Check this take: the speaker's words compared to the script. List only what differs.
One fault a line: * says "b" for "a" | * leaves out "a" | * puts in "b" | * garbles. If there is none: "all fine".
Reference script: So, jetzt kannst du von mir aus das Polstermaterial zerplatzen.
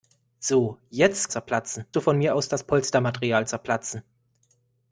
* says "zerplatzen" for "kannst"